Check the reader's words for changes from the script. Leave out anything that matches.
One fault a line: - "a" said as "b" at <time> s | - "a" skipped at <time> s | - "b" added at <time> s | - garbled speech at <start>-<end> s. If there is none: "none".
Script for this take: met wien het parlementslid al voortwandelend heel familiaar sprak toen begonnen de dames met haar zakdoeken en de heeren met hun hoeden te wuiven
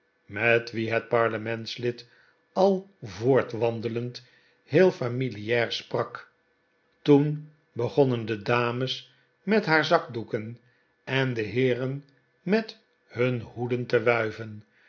none